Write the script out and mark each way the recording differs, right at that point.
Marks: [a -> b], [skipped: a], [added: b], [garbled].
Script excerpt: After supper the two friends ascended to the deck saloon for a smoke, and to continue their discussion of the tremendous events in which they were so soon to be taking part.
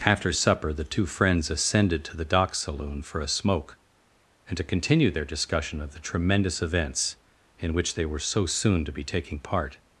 After supper the two friends ascended to the [deck -> dock] saloon for a smoke, and to continue their discussion of the tremendous events in which they were so soon to be taking part.